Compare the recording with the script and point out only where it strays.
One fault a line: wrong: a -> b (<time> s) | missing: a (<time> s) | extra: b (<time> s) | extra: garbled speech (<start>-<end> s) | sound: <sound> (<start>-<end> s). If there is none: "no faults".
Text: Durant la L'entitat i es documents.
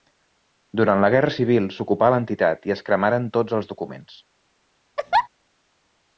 extra: Guerra Civil s'ocupà (1.1 s)
extra: cremaren tots els (2.9 s)
sound: laugh (5.0-5.3 s)